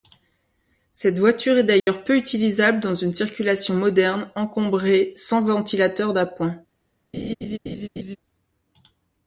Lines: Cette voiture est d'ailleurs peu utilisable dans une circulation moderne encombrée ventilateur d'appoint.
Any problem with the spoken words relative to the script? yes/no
yes